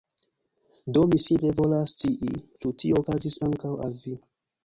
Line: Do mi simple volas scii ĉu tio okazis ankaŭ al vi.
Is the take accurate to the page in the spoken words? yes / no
yes